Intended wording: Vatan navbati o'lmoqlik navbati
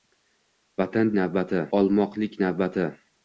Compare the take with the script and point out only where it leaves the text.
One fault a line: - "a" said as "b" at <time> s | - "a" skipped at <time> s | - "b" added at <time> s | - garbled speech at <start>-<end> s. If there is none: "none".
none